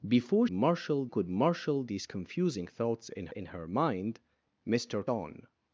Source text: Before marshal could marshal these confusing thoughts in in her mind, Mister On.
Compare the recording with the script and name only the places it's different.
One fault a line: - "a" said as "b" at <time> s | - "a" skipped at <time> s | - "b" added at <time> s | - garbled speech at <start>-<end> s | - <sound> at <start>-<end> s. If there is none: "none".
none